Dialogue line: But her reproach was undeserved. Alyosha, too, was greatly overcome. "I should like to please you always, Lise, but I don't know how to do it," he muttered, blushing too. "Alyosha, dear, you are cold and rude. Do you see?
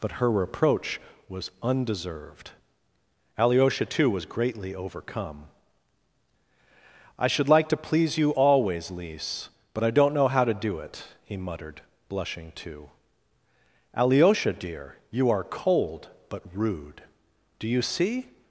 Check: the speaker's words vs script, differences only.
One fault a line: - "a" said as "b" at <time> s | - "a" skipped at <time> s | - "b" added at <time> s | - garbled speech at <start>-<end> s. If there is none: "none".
- "and" said as "but" at 16.3 s